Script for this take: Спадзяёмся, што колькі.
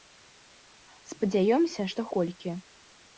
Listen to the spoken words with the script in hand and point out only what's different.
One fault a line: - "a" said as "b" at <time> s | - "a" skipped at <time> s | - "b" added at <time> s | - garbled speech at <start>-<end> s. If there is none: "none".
none